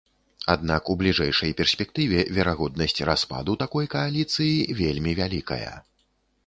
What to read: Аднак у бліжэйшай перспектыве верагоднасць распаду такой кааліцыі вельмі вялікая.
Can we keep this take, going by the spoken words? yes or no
yes